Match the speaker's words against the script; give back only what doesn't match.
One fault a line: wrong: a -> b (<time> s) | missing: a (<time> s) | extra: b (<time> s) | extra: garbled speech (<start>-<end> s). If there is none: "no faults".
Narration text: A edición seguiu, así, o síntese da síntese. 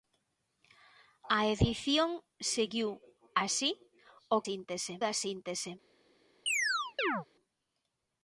no faults